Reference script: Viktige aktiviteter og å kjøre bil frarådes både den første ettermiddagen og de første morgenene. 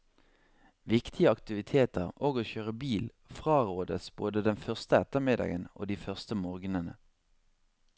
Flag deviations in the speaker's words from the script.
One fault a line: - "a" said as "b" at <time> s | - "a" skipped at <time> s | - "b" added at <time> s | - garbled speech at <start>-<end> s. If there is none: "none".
none